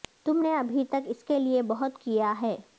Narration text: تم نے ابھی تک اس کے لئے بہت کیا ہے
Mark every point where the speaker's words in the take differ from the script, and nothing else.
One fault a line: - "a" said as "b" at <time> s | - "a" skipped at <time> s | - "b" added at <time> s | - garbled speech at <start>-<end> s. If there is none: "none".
none